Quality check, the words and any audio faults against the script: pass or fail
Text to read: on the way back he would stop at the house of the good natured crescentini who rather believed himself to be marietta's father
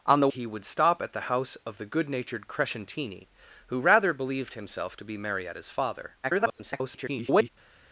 fail